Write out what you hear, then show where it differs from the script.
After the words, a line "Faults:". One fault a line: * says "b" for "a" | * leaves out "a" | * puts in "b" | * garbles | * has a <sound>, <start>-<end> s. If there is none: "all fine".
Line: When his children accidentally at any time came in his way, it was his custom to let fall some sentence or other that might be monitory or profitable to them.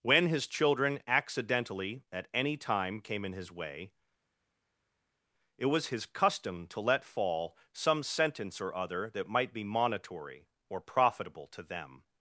When his children accidentally at any time came in his way, it was his custom to let fall some sentence or other that might be monitory or profitable to them.
Faults:
all fine